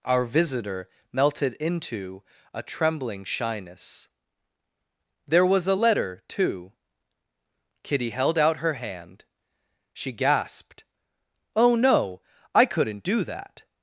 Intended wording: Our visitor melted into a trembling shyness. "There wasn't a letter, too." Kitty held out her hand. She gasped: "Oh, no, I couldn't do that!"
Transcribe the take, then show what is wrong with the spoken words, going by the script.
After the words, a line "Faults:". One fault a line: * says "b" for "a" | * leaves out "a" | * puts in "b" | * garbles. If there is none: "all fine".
Our visitor melted into a trembling shyness. "There was a letter, too." Kitty held out her hand. She gasped: "Oh, no, I couldn't do that!"
Faults:
* says "was" for "wasn't"